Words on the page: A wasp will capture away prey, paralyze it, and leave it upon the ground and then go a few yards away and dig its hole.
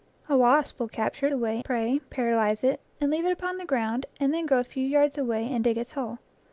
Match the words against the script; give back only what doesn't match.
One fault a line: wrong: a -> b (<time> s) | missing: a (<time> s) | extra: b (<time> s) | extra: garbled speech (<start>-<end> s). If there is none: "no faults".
no faults